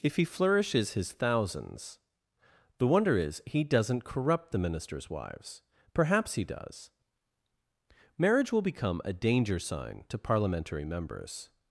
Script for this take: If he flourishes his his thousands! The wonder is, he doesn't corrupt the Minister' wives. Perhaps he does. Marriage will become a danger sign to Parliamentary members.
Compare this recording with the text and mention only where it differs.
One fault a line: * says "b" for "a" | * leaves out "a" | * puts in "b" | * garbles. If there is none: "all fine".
* leaves out "his"
* says "Ministers" for "Minister"